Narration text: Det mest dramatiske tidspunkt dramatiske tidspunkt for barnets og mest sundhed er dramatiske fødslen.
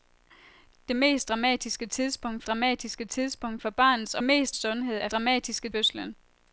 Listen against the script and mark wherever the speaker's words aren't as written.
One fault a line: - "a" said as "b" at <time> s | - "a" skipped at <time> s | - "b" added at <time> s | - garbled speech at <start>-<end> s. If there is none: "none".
none